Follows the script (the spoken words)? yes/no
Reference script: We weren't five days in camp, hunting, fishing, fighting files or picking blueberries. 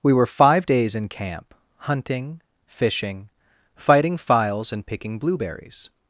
no